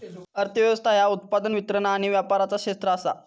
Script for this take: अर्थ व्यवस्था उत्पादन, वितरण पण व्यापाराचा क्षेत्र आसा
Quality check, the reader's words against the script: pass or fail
fail